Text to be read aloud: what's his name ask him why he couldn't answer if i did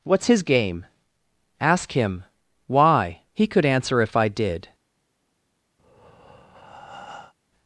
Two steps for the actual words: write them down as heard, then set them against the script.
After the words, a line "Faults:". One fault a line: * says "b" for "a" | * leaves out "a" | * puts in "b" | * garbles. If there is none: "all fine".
what's his game ask him why he could answer if i did
Faults:
* says "game" for "name"
* says "could" for "couldn't"